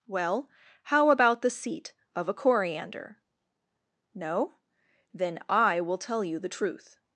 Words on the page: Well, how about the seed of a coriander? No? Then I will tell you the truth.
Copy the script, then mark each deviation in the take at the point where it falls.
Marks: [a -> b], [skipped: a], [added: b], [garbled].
Well, how about the [seed -> seat] of a coriander? No? Then I will tell you the truth.